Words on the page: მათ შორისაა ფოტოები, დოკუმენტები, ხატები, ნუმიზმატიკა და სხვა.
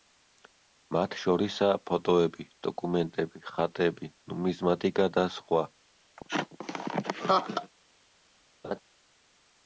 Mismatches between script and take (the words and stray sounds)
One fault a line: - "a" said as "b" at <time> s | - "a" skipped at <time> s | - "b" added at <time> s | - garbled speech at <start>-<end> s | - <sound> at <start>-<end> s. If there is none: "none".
- laugh at 6.2-7.7 s
- laugh at 8.6-8.8 s